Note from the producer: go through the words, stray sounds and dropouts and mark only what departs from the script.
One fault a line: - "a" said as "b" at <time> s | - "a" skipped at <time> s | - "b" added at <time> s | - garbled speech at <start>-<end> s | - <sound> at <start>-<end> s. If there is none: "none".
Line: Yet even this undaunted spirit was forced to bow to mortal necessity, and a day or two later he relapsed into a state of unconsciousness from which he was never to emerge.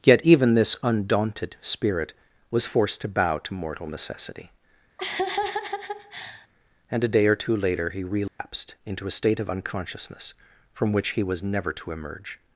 - laugh at 5.0-6.5 s
- dropout at 8.3-8.4 s